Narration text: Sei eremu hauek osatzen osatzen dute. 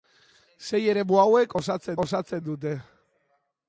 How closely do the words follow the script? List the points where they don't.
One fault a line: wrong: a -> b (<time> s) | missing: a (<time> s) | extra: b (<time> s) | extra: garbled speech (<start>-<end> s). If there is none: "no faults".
no faults